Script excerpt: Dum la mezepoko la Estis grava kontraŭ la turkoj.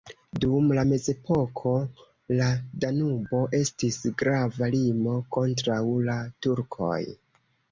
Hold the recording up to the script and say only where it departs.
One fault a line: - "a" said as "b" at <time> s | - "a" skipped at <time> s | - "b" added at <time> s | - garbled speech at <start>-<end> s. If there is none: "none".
- "Danubo" added at 2.8 s
- "limo" added at 4.8 s